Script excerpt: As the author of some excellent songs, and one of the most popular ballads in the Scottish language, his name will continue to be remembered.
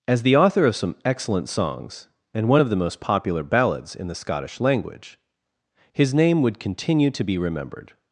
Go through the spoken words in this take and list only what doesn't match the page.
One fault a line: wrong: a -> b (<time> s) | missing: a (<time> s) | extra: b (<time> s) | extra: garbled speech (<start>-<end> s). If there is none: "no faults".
wrong: will -> would (6.4 s)